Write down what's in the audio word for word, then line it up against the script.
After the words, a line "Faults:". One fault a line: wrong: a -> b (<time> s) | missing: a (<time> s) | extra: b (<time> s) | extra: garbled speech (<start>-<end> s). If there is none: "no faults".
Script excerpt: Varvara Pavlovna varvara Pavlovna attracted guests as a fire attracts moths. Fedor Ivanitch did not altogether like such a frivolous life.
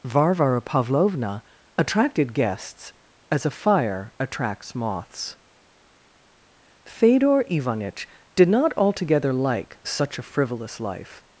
Varvara Pavlovna attracted guests as a fire attracts moths. Fedor Ivanitch did not altogether like such a frivolous life.
Faults:
missing: varvara Pavlovna (1.4 s)